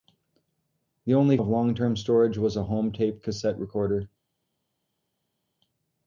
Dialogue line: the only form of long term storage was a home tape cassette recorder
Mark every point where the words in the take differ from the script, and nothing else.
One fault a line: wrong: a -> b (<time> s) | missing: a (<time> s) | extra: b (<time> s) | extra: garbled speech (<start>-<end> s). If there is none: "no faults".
missing: form (1.4 s)